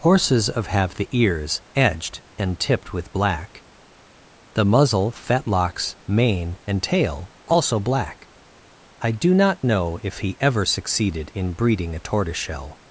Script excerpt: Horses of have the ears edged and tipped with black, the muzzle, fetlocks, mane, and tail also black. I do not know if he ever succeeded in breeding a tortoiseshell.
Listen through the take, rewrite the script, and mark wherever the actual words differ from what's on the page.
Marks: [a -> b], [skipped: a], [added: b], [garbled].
Horses of have the ears edged and tipped with black, the muzzle, fetlocks, mane, and tail also black. I do not know if he ever succeeded in breeding a tortoiseshell.